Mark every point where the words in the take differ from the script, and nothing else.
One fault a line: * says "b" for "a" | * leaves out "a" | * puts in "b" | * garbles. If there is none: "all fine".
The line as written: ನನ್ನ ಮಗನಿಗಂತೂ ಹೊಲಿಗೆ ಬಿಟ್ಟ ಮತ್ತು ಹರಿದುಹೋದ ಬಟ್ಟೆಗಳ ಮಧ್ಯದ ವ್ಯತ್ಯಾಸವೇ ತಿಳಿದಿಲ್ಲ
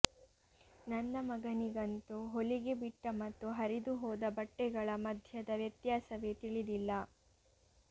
all fine